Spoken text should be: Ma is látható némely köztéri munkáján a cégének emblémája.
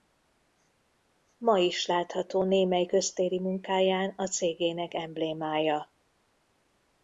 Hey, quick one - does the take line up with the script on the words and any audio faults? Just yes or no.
yes